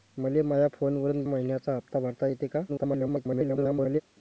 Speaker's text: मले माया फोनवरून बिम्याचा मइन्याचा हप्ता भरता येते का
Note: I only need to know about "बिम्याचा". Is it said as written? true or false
false